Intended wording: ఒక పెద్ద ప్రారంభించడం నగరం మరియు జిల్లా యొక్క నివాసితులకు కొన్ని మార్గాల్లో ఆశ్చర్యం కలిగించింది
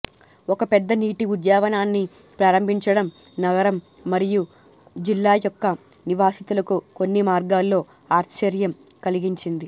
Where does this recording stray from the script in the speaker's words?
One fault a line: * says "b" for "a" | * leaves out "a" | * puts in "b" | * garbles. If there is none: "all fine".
* puts in "నీటి ఉద్యానవనాన్ని"